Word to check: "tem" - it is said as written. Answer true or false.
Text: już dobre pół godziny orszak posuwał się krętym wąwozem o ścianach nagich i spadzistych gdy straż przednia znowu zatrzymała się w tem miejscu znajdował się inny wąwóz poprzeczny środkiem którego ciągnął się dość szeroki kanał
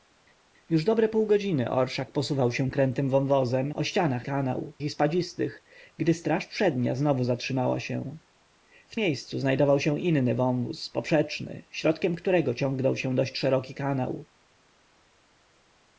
false